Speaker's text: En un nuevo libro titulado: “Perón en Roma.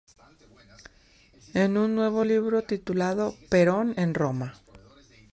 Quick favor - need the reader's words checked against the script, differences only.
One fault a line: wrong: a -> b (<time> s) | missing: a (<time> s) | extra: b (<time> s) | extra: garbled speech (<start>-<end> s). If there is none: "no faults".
no faults